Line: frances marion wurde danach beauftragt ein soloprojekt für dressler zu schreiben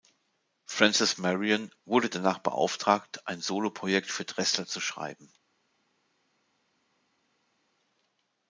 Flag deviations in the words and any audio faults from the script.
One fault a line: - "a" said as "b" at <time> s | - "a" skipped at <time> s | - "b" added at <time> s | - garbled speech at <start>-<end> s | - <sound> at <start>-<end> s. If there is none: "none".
none